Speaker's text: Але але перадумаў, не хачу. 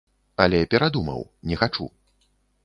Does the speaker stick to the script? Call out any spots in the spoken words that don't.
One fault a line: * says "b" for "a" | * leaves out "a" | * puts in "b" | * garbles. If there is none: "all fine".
* leaves out "але"